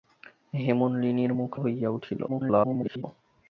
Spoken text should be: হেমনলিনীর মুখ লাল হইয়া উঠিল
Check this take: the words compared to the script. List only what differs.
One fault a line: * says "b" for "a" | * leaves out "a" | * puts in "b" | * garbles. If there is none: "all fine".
* leaves out "লাল"
* garbles